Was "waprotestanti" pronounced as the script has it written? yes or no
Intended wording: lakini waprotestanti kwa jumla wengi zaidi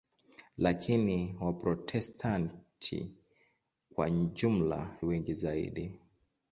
yes